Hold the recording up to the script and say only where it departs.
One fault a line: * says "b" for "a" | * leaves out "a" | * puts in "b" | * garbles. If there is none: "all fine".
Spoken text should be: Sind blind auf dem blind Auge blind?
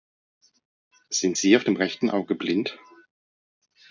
* says "sie" for "blind"
* says "rechten" for "blind"